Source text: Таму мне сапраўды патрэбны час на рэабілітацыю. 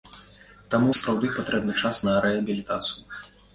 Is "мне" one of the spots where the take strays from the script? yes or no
yes